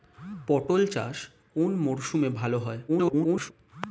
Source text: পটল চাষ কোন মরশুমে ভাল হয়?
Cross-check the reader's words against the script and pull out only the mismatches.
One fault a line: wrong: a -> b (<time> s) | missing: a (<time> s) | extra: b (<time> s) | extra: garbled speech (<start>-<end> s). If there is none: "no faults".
extra: garbled speech (2.9-3.5 s)